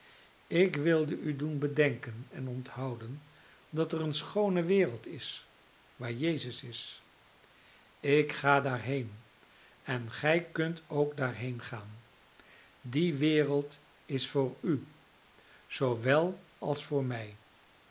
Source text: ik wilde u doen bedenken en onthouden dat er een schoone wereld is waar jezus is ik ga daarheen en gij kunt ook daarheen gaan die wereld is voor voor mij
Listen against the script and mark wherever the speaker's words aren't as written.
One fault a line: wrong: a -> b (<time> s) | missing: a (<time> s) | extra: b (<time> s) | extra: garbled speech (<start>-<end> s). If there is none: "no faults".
extra: u zoowel als (14.6 s)